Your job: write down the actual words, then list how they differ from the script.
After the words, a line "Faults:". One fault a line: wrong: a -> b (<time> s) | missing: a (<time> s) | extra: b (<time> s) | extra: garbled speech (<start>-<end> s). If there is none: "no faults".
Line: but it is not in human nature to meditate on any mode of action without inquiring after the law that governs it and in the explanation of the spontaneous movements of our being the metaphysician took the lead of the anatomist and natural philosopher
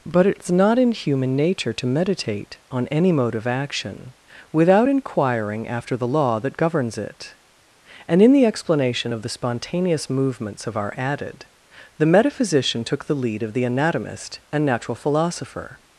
but it is not in human nature to meditate on any mode of action without inquiring after the law that governs it and in the explanation of the spontaneous movements of our added the metaphysician took the lead of the anatomist and natural philosopher
Faults:
wrong: being -> added (11.0 s)